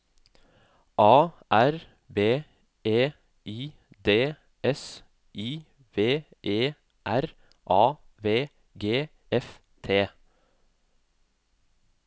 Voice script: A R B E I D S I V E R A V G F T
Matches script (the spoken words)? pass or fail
pass